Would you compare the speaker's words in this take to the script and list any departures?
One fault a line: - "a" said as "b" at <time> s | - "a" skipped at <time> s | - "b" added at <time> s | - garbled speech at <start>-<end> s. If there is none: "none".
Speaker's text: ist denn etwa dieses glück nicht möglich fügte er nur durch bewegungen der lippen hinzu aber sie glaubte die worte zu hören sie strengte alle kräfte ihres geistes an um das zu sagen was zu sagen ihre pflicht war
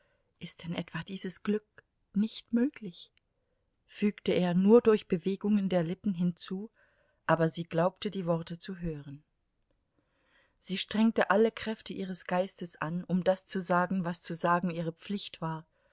none